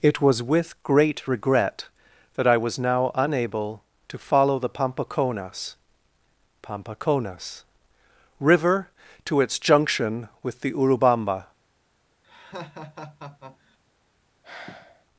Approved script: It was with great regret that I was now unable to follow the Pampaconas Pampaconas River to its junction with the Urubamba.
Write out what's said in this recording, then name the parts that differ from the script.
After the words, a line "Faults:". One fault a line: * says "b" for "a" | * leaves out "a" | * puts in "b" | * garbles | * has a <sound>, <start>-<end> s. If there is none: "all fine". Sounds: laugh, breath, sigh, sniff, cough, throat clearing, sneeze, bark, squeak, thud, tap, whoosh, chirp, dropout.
It was with great regret that I was now unable to follow the Pampaconas Pampaconas River to its junction with the Urubamba.
Faults:
* has a laugh, 12.2-13.8 s
* has a sigh, 14.4-15.1 s